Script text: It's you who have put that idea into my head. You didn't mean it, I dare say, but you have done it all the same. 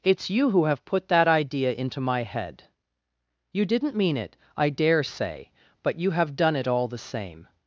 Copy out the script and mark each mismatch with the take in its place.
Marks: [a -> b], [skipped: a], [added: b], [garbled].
It's you who have put that idea into my head. You didn't mean it, I dare say, but you have done it all the same.